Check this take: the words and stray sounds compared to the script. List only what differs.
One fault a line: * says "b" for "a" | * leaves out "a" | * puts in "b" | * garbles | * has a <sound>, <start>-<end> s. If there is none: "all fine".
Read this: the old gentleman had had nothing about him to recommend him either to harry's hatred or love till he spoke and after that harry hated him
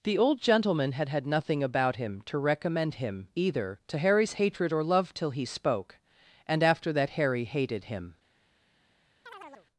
* has a chirp, 9.3-9.7 s